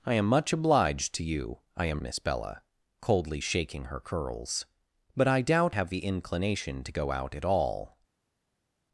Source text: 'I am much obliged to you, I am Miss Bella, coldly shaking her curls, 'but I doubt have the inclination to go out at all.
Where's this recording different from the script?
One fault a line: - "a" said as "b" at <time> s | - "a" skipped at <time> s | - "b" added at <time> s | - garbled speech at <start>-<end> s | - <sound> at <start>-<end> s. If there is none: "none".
none